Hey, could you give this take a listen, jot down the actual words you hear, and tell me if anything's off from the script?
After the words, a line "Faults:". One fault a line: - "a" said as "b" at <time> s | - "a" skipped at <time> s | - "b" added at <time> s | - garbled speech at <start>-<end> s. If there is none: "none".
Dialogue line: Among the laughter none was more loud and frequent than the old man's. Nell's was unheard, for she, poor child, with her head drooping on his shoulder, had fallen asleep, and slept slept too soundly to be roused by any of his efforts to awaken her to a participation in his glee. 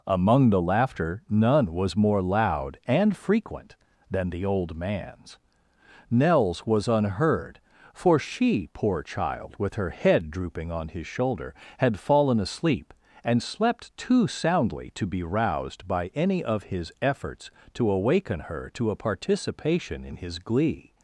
Among the laughter none was more loud and frequent than the old man's. Nell's was unheard, for she, poor child, with her head drooping on his shoulder, had fallen asleep, and slept too soundly to be roused by any of his efforts to awaken her to a participation in his glee.
Faults:
- "slept" skipped at 14.0 s